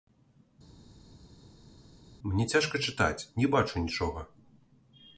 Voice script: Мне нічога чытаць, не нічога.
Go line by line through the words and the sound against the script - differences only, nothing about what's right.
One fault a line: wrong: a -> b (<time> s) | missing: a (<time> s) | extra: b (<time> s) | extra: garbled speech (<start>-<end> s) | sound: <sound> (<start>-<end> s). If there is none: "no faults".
wrong: нічога -> цяжка (2.5 s)
extra: бачу (3.6 s)